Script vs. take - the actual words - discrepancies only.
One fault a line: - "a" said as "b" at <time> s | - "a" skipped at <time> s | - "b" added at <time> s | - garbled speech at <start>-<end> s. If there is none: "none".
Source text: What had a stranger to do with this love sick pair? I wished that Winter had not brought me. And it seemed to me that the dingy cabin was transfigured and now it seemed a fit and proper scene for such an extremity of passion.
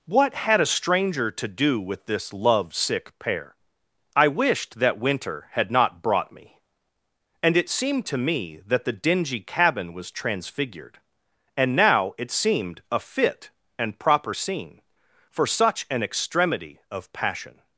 none